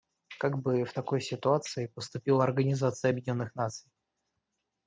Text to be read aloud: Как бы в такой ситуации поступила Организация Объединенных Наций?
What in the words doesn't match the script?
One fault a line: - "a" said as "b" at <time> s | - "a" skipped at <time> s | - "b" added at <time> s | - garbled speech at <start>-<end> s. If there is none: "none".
none